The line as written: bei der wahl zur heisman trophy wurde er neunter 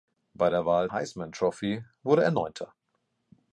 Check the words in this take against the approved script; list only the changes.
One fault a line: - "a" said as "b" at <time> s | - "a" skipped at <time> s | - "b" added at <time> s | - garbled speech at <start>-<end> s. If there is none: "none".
- "zur" skipped at 0.9 s